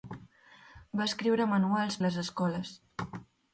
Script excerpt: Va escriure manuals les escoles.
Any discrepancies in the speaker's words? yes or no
no